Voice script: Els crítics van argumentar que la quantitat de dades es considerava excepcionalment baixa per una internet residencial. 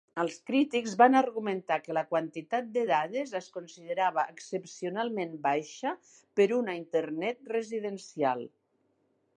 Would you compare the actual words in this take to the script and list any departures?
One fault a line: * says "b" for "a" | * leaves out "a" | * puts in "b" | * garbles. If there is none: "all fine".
all fine